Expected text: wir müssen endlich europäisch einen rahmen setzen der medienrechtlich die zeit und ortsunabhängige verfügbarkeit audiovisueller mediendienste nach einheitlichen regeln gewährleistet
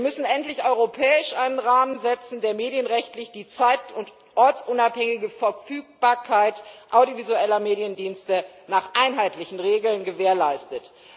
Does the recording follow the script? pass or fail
pass